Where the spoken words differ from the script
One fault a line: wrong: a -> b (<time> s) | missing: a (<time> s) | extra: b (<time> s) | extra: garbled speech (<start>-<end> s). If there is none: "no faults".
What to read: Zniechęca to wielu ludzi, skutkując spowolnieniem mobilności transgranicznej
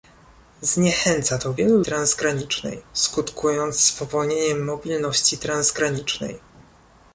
wrong: ludzi -> transgranicznej (1.8 s)